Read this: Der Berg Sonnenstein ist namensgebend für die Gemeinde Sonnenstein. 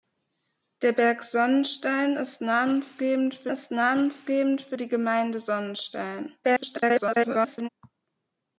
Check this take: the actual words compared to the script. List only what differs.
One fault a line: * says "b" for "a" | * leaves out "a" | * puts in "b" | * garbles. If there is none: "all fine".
* puts in "ist namensgebend für"
* garbles